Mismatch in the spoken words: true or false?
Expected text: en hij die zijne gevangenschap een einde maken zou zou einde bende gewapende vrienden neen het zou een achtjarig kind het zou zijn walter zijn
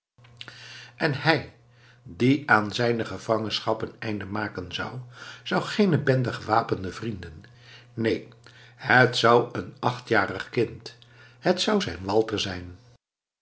true